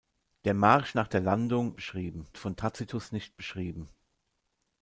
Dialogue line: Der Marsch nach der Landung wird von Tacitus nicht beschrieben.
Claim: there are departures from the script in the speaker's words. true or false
true